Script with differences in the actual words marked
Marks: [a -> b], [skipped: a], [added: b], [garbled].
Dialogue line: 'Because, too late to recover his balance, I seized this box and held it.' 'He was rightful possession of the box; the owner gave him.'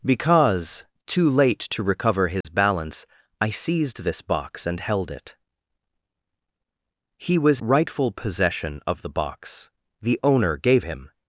'Because, too late to recover his balance, I seized this box and held it.' 'He was rightful possession of the box; the owner gave him.'